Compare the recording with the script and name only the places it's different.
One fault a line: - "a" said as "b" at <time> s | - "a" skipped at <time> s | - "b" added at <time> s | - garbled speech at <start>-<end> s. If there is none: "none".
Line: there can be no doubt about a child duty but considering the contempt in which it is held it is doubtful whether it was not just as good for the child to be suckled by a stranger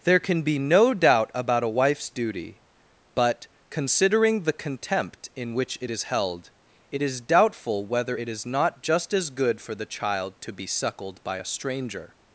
- "child" said as "wife's" at 1.7 s
- "was" said as "is" at 8.3 s